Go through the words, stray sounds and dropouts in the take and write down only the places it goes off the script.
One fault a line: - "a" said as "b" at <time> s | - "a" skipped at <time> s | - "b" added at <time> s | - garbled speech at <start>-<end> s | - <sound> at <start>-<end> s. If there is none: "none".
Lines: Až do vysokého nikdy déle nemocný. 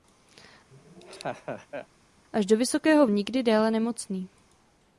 - laugh at 0.7-1.9 s